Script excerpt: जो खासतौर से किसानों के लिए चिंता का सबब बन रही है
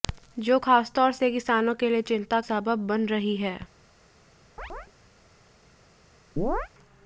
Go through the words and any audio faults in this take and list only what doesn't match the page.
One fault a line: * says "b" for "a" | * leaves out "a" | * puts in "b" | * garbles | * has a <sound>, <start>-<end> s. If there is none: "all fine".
* leaves out "का"
* has a chirp, 4.6-4.9 s
* has a chirp, 6.4-6.7 s